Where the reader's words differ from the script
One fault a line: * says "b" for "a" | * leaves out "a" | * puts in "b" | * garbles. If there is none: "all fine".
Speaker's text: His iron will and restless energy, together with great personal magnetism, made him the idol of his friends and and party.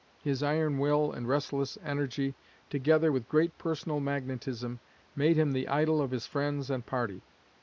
* leaves out "and"